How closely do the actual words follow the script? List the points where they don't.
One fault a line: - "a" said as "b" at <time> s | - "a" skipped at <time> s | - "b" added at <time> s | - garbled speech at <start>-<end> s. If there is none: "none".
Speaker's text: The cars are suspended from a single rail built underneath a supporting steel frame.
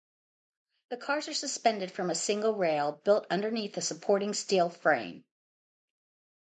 none